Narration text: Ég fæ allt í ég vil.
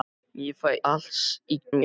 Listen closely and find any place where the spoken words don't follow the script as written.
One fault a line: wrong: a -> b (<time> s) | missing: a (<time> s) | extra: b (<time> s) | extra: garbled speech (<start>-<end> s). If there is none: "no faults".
no faults